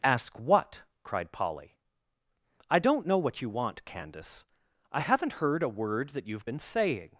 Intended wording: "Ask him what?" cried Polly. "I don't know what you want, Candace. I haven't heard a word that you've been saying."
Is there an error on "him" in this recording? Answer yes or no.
yes